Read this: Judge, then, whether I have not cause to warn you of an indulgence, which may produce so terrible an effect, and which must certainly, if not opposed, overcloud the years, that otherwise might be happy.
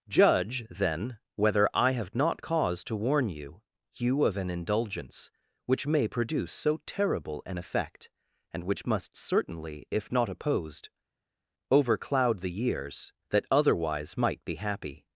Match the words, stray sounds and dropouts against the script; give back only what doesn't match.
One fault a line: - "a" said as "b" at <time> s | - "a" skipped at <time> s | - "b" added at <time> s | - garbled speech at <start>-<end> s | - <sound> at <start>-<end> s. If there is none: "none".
- "you" added at 3.9 s